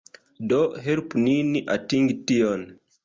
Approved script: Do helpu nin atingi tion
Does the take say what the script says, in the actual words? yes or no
yes